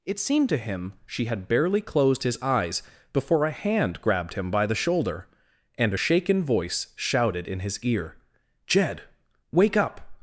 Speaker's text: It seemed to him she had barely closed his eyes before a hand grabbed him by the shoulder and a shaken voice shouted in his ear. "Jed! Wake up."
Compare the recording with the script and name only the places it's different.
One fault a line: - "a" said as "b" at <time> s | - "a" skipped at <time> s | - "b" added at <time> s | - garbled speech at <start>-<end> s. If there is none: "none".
none